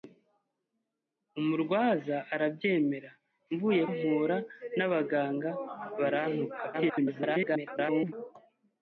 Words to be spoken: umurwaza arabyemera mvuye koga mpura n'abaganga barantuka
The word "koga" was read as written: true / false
false